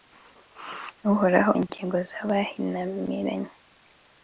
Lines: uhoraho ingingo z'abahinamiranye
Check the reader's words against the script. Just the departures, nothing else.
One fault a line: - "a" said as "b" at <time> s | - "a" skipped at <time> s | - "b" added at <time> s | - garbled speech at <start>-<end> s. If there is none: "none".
none